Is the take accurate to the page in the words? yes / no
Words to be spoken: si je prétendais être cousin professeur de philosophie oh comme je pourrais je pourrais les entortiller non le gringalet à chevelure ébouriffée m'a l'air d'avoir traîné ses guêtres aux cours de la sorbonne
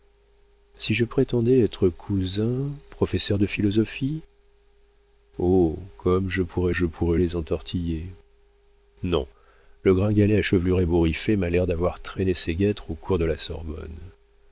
yes